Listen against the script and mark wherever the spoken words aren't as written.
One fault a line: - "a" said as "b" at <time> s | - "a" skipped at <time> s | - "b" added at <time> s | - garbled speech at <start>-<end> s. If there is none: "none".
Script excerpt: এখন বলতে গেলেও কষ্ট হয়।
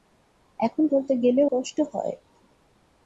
none